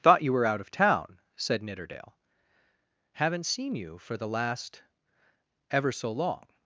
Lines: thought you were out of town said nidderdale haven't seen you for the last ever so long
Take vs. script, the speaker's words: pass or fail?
pass